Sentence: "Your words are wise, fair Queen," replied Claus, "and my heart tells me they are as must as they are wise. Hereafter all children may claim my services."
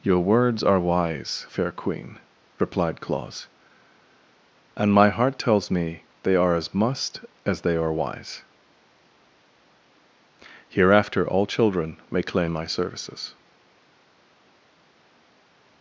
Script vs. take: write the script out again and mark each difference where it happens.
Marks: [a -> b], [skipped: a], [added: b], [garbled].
"Your words are wise, fair Queen," replied Claus, "and my heart tells me they are as must as they are wise. Hereafter all children may claim my services."